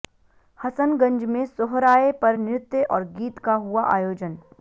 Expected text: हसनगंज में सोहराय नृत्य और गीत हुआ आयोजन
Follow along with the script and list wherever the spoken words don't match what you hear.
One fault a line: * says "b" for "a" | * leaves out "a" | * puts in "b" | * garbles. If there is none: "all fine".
* puts in "पर"
* puts in "का"